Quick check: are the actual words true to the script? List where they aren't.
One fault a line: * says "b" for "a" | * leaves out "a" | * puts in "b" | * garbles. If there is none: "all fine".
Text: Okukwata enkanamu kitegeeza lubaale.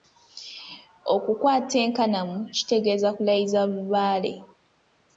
* puts in "kulayiza"